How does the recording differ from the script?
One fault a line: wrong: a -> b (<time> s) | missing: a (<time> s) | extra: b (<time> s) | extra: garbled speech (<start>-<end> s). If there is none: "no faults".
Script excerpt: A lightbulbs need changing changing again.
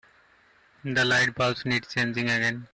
wrong: A -> The (0.8 s)
missing: changing (2.2 s)